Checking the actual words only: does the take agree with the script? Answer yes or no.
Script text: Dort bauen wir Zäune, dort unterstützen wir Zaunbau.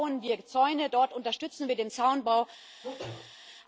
no